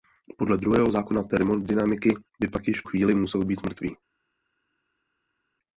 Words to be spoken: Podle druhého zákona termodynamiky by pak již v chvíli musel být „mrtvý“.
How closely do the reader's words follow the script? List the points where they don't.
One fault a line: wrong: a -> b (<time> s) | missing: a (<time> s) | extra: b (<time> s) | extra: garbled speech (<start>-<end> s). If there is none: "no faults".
no faults